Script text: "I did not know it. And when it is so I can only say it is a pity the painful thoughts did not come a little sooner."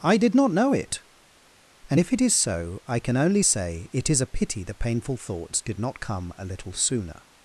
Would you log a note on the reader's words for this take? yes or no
yes